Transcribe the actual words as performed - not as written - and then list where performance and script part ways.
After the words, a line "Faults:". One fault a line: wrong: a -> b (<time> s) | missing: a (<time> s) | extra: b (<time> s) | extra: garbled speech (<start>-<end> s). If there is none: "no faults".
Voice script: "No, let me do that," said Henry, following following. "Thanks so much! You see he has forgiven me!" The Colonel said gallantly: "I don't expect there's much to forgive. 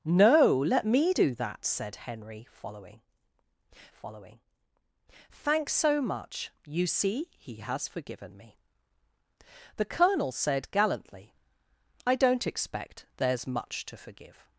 "No, let me do that," said Henry, following following. "Thanks so much! You see he has forgiven me!" The Colonel said gallantly: "I don't expect there's much to forgive.
Faults:
no faults